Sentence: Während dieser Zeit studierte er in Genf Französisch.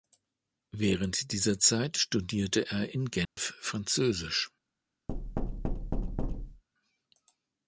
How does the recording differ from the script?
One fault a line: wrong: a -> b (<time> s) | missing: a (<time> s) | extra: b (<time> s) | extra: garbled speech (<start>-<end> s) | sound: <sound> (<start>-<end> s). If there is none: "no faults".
sound: dropout (3.3-3.4 s)
sound: thud (5.1-6.6 s)